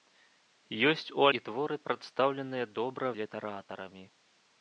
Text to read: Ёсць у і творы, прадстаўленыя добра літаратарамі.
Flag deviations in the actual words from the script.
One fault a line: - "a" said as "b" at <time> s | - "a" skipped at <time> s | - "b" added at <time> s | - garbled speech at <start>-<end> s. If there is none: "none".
none